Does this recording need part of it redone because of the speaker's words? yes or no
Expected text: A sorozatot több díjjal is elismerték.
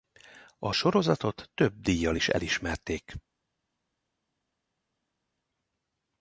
no